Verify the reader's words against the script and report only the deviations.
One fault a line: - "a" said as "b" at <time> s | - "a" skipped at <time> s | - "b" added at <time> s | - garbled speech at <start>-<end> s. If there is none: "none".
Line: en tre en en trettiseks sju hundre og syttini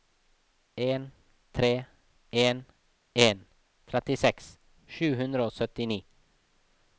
none